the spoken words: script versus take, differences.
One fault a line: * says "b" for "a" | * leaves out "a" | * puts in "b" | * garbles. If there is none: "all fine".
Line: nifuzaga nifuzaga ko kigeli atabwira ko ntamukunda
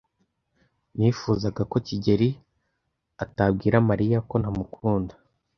* leaves out "nifuzaga"
* puts in "mariya"